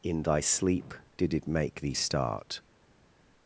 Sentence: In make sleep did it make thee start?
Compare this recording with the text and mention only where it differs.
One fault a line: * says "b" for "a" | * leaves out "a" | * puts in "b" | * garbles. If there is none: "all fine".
* says "thy" for "make"